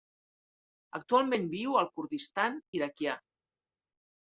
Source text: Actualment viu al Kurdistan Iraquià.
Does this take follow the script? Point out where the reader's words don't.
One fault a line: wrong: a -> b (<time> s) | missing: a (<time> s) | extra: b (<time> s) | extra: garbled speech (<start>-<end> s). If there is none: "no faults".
no faults